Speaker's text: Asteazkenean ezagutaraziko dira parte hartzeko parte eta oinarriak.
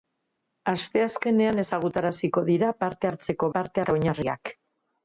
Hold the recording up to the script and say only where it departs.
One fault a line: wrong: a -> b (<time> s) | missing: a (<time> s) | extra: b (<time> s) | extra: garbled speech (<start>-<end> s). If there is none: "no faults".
no faults